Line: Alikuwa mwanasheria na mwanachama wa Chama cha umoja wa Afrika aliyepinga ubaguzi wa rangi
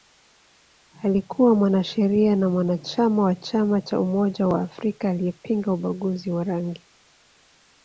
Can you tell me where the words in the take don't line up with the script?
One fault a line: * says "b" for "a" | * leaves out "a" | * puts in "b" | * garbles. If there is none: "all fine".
all fine